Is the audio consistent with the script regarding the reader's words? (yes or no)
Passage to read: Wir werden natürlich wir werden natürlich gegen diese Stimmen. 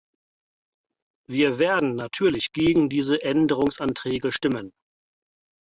no